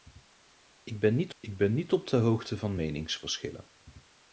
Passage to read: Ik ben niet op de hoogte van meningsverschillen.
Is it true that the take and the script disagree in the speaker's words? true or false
true